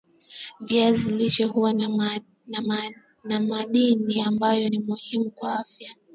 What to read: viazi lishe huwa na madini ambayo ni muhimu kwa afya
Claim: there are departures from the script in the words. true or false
false